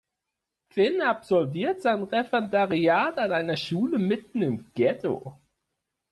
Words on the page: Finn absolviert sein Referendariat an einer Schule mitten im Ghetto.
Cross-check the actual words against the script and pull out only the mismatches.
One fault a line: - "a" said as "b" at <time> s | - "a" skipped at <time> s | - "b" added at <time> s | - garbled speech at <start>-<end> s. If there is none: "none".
none